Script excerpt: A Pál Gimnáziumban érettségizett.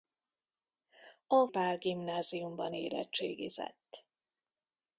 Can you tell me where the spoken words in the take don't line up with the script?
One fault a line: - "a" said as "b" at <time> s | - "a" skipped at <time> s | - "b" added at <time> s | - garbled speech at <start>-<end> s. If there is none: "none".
none